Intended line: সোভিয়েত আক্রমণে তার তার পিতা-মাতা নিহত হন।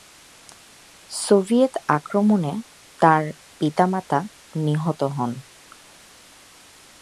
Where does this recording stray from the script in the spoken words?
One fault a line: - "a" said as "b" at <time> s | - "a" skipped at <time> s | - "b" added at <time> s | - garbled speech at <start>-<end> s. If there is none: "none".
- "তার" skipped at 3.2 s